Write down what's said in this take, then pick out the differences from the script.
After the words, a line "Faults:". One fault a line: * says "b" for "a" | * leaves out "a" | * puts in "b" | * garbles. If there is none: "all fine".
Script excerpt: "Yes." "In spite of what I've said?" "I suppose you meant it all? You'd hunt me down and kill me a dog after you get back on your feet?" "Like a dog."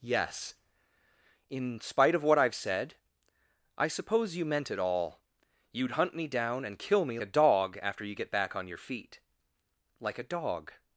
"Yes." "In spite of what I've said?" "I suppose you meant it all? You'd hunt me down and kill me a dog after you get back on your feet?" "Like a dog."
Faults:
all fine